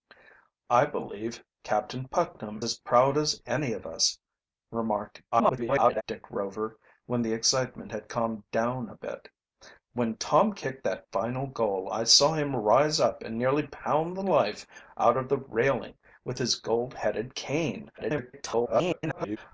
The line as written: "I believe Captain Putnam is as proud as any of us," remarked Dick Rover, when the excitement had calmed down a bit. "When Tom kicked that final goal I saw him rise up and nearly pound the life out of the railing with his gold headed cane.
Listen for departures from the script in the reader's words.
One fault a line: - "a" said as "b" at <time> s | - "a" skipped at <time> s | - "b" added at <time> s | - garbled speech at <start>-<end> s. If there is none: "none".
- "is" skipped at 2.6 s
- garbled speech at 5.3-6.0 s
- garbled speech at 18.0-19.4 s